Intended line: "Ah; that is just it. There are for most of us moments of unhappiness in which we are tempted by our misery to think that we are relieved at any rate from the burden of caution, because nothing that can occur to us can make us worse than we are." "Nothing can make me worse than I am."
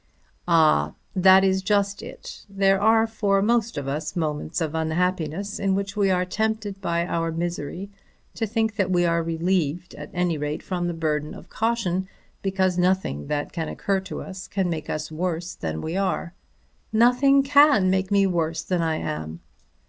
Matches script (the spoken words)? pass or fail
pass